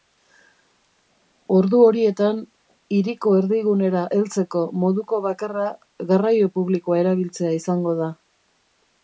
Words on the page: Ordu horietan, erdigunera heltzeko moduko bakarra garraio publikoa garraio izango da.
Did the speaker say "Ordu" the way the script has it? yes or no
yes